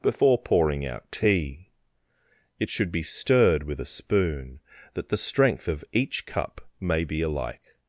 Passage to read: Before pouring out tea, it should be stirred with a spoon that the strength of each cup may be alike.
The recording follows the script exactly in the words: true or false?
true